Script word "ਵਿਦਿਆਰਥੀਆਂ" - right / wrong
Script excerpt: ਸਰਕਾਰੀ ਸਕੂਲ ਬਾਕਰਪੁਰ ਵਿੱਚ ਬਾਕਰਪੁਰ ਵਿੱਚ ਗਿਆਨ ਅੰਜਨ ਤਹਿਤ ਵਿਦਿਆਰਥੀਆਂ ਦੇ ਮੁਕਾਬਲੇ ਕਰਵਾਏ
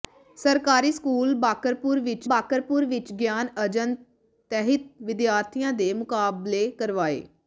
right